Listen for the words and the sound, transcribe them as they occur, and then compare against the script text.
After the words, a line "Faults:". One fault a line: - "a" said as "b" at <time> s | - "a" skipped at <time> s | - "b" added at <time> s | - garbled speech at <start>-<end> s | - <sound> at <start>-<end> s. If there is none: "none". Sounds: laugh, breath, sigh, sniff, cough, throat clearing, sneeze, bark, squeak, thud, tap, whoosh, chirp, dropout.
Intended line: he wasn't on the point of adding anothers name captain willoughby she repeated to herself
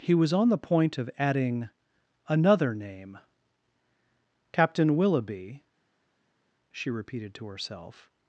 he was on the point of adding another name captain willoughby she repeated to herself
Faults:
- "wasn't" said as "was" at 0.1 s
- "anothers" said as "another" at 2.3 s